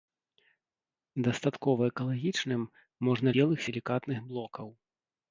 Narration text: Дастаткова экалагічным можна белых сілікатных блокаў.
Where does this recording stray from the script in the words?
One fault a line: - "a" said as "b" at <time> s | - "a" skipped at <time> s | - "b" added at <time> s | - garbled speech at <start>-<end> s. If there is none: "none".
none